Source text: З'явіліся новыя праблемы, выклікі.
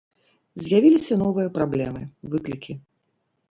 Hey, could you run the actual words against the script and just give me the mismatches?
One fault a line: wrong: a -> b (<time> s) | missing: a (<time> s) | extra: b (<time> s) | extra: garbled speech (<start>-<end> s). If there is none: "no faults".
no faults